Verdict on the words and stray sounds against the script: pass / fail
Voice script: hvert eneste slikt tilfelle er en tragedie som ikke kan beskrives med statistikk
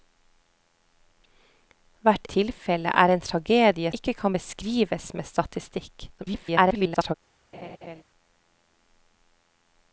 fail